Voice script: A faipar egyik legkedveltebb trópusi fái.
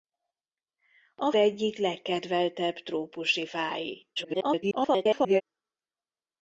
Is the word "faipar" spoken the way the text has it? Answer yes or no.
no